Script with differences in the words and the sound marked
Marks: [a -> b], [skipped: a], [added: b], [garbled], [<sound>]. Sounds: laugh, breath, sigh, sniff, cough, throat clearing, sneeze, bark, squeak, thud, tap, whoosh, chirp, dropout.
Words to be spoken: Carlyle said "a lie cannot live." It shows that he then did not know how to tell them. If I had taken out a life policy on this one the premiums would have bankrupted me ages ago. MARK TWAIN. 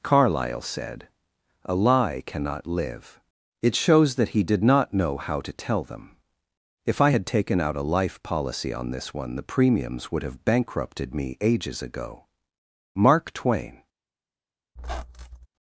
Carlyle said "a lie cannot live." It shows that he [skipped: then] did not know how to tell them. If I had taken out a life policy on this one the premiums would have bankrupted me ages ago. MARK TWAIN. [squeak]